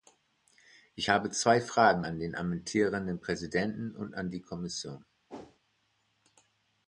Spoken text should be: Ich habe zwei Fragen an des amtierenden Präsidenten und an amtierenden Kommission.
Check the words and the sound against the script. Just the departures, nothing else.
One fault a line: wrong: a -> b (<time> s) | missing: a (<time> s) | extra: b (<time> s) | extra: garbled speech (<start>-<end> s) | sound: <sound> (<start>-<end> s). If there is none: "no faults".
wrong: des -> den (2.2 s)
wrong: amtierenden -> die (4.3 s)
sound: whoosh (5.3-5.6 s)